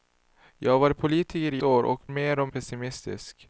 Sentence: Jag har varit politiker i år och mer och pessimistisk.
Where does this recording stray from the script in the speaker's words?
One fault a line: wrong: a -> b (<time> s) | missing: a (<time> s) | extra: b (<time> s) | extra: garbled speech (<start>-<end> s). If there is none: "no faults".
no faults